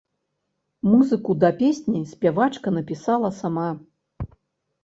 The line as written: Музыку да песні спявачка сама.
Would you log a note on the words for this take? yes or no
yes